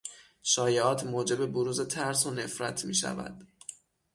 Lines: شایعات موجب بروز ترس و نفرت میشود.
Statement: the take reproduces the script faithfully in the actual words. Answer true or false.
true